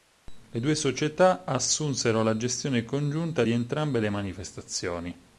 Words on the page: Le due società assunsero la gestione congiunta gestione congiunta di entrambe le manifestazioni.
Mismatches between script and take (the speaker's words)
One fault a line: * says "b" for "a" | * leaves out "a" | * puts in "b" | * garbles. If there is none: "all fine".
* leaves out "gestione congiunta"